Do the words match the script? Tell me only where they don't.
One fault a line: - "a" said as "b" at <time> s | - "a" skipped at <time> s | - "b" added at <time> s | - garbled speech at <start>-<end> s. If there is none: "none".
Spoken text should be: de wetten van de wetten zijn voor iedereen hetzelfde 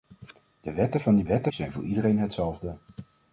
none